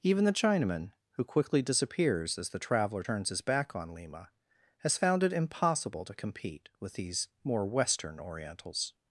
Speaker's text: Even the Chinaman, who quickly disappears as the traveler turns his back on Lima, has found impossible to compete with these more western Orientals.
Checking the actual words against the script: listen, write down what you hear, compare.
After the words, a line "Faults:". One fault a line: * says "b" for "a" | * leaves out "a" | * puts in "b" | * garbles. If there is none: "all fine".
Even the Chinaman, who quickly disappears as the traveler turns his back on Lima, has found it impossible to compete with these more western Orientals.
Faults:
* puts in "it"